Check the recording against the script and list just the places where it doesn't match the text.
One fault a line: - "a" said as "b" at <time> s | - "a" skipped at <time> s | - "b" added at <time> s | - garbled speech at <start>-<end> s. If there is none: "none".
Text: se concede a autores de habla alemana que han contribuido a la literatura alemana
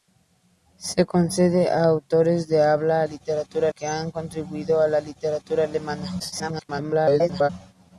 - "alemana" said as "literatura" at 3.0 s
- garbled speech at 6.2-7.5 s